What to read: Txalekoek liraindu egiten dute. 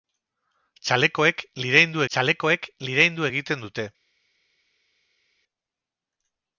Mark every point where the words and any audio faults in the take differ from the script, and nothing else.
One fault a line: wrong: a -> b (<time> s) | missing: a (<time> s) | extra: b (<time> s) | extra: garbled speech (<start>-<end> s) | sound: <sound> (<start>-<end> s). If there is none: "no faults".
extra: txalekoek liraindu (2.1 s)